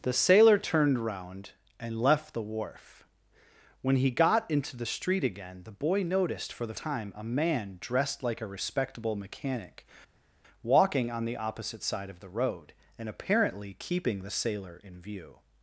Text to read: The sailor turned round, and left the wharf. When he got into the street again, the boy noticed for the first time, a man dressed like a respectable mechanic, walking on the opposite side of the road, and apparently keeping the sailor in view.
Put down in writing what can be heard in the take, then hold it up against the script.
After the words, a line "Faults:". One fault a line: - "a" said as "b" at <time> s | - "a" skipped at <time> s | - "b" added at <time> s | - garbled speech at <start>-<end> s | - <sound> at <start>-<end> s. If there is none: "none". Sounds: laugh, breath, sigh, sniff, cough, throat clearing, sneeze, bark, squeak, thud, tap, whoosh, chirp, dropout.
The sailor turned round, and left the wharf. When he got into the street again, the boy noticed for the time, a man dressed like a respectable mechanic, walking on the opposite side of the road, and apparently keeping the sailor in view.
Faults:
- "first" skipped at 6.7 s